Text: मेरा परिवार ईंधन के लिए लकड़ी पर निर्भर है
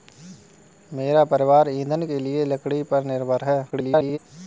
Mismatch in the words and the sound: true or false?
true